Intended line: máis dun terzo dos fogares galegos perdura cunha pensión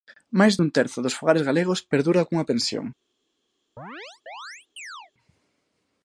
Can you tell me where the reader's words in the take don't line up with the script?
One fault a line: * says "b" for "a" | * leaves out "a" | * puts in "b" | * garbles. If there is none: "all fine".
all fine